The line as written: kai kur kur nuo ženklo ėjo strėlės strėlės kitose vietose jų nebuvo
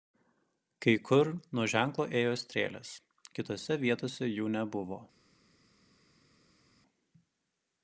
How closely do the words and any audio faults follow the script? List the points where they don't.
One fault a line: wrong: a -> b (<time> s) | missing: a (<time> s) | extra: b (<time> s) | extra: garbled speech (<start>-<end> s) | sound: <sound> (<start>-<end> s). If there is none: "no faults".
missing: kur (1.3 s)
missing: strėlės (2.9 s)